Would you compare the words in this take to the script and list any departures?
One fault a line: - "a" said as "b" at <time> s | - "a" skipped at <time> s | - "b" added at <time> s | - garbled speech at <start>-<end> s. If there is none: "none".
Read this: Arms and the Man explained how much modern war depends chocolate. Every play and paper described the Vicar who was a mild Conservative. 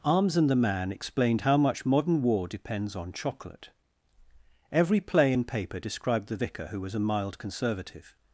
- "on" added at 2.9 s